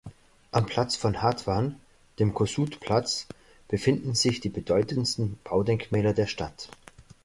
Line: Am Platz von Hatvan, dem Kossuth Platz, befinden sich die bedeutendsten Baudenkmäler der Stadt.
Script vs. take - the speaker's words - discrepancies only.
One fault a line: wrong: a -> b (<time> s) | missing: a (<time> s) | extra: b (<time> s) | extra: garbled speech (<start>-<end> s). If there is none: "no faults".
no faults